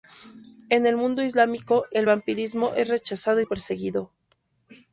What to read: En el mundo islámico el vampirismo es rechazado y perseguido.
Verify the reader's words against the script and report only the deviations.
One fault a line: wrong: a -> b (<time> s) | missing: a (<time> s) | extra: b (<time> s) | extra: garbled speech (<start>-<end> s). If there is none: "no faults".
no faults